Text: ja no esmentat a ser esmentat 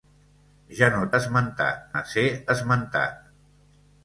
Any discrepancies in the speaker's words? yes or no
no